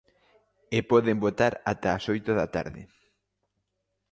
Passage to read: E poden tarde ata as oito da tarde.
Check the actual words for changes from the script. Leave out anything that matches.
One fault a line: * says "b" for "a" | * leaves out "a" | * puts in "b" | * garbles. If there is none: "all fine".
* says "votar" for "tarde"